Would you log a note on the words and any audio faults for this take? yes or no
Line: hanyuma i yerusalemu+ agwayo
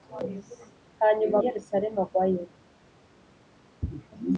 no